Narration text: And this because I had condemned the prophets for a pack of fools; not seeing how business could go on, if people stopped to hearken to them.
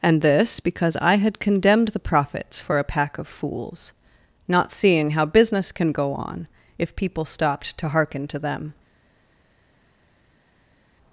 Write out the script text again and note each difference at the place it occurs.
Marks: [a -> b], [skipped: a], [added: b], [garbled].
And this because I had condemned the prophets for a pack of fools; not seeing how business [could -> can] go on, if people stopped to hearken to them.